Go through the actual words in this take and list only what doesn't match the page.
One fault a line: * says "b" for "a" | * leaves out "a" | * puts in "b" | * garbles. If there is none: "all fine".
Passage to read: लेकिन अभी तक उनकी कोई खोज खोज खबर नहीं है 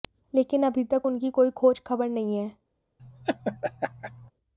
* leaves out "खोज"